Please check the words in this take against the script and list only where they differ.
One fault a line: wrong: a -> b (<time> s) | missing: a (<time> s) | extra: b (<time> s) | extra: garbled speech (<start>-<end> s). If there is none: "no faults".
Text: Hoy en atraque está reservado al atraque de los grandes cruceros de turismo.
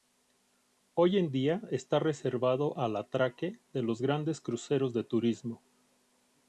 wrong: atraque -> día (1.3 s)